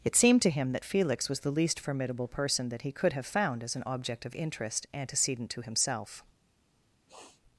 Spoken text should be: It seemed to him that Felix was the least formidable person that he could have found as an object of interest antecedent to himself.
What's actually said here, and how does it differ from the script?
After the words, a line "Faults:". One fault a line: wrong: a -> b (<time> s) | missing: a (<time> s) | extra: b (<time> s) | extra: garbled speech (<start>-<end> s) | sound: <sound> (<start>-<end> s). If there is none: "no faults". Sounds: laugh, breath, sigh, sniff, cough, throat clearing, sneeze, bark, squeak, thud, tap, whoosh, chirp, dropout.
It seemed to him that Felix was the least formidable person that he could have found as an object of interest antecedent to himself.
Faults:
sound: sniff (7.1-7.4 s)